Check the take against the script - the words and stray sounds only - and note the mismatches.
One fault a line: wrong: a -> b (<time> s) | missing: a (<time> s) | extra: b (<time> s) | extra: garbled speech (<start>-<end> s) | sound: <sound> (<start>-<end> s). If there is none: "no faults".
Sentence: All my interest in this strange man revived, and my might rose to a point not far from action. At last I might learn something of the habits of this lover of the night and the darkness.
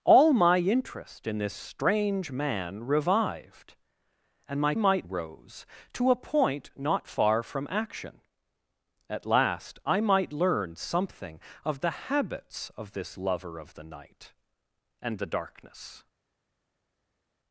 no faults